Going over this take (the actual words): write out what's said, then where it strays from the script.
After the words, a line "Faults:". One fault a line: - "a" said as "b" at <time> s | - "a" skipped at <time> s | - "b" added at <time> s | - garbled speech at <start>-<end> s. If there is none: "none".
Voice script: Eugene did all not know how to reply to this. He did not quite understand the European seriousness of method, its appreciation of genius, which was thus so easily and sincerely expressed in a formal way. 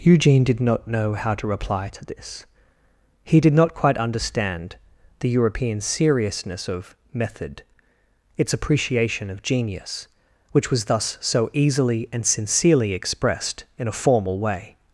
Eugene did not know how to reply to this. He did not quite understand the European seriousness of method, its appreciation of genius, which was thus so easily and sincerely expressed in a formal way.
Faults:
- "all" skipped at 0.6 s